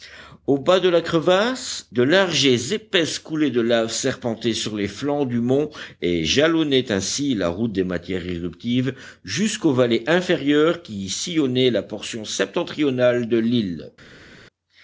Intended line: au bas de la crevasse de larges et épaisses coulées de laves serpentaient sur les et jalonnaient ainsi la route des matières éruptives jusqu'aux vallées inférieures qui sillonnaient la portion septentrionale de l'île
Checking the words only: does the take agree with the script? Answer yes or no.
no